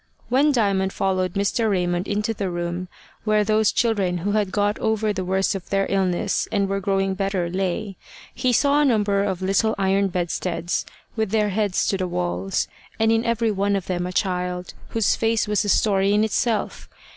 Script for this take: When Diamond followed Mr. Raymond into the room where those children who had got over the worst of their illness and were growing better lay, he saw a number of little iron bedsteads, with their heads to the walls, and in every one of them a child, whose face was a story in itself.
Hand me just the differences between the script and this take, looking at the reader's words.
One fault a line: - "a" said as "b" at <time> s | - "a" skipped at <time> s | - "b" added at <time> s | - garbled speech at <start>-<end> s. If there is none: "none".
none